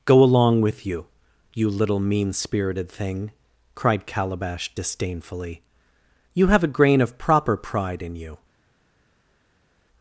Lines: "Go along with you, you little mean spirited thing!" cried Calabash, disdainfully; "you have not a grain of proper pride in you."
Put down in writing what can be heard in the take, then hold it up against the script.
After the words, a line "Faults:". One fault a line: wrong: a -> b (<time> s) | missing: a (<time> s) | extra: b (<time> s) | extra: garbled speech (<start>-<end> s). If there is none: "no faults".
"Go along with you, you little mean spirited thing!" cried Calabash, disdainfully; "you have a grain of proper pride in you."
Faults:
missing: not (6.6 s)